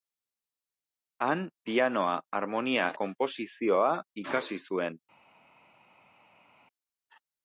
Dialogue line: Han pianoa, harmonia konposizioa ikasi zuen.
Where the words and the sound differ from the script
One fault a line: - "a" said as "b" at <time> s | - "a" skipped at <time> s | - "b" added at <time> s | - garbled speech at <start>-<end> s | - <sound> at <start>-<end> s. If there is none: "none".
none